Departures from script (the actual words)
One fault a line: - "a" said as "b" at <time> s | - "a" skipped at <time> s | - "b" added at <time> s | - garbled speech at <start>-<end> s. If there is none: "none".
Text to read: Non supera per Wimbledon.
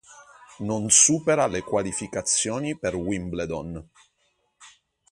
- "le qualificazioni" added at 1.4 s